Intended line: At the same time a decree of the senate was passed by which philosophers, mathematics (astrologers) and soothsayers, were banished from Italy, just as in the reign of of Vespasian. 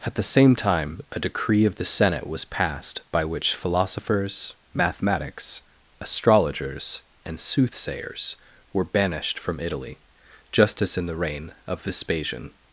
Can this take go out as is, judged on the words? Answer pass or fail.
fail